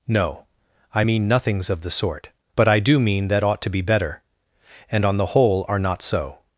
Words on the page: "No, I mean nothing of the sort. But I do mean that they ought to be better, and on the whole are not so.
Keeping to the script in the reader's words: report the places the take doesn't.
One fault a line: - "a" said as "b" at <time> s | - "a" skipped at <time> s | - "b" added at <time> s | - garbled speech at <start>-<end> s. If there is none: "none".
- "nothing" said as "nothings" at 1.3 s
- "they" skipped at 3.4 s